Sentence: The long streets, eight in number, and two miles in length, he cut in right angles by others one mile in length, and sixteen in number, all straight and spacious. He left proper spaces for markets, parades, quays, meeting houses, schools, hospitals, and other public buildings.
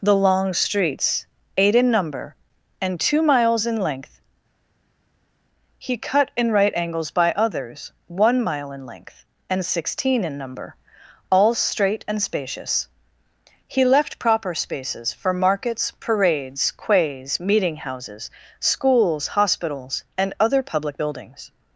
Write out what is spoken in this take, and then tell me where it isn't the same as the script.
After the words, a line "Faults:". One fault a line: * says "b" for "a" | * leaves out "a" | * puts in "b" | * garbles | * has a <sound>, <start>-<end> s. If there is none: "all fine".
The long streets, eight in number, and two miles in length, he cut in right angles by others one mile in length, and sixteen in number, all straight and spacious. He left proper spaces for markets, parades, quays, meeting houses, schools, hospitals, and other public buildings.
Faults:
all fine